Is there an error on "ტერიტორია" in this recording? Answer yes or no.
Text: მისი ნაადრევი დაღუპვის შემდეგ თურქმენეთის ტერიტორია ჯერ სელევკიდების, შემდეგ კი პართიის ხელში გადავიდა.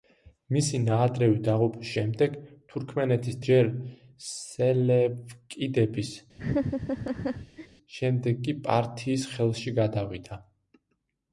yes